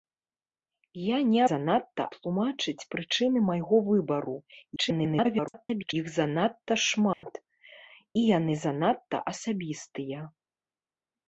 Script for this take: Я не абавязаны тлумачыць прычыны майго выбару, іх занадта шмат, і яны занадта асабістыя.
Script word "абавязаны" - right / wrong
wrong